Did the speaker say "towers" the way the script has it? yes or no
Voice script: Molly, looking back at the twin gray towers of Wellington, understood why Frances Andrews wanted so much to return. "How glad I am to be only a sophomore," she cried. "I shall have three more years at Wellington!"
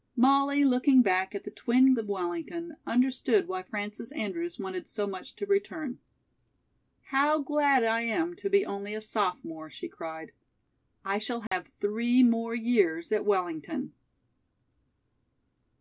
no